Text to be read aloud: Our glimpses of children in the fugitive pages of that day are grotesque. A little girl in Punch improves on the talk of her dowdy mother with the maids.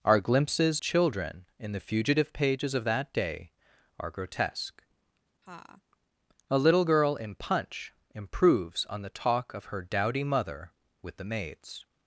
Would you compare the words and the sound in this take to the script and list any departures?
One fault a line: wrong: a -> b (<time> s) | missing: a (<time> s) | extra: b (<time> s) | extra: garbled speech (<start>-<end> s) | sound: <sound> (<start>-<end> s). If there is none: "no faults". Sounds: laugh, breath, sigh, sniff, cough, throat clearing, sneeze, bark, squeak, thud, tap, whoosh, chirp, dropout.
missing: of (0.8 s)
sound: laugh (5.4-5.8 s)